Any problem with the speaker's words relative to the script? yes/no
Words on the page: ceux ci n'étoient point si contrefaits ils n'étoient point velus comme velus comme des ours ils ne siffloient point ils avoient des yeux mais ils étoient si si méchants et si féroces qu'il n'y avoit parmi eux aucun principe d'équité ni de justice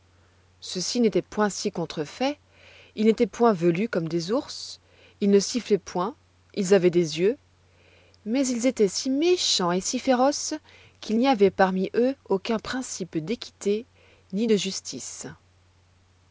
yes